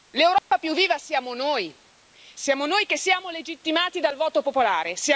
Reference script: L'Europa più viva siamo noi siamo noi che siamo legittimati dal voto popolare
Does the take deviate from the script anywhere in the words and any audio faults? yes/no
yes